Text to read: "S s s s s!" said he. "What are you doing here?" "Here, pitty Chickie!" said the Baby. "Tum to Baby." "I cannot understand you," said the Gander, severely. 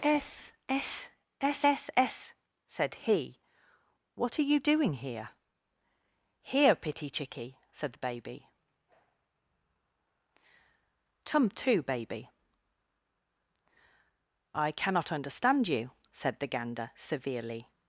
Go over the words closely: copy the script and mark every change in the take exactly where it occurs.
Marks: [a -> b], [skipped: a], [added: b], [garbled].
"S s s s s!" said he. "What are you doing here?" "Here, pitty Chickie!" said the Baby. "Tum to Baby." "I cannot understand you," said the Gander, severely.